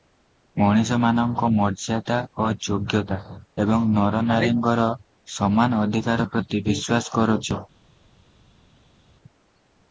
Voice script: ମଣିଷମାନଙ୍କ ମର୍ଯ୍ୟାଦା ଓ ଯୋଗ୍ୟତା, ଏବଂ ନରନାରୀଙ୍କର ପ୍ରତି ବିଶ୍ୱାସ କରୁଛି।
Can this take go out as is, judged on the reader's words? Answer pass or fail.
fail